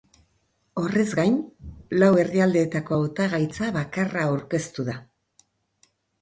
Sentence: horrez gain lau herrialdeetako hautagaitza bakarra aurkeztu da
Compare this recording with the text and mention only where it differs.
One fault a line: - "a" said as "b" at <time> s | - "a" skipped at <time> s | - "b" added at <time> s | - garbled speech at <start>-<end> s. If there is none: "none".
none